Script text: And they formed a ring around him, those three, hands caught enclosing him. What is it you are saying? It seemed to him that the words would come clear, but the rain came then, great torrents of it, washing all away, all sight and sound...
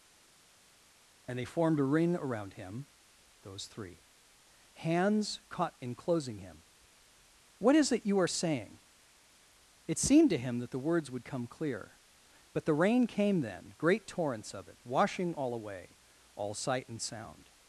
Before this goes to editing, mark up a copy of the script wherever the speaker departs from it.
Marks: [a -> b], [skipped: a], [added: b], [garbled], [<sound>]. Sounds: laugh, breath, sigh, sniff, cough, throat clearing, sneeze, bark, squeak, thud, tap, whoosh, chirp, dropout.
And they formed a ring around him, those three, hands caught enclosing him. What is it you are saying? It seemed to him that the words would come clear, but the rain came then, great torrents of it, washing all away, all sight and sound...